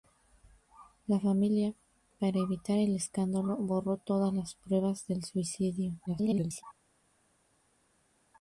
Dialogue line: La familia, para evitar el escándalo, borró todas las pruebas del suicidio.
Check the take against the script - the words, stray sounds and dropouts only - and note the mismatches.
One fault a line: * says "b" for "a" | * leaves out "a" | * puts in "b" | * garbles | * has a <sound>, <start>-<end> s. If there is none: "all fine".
* garbles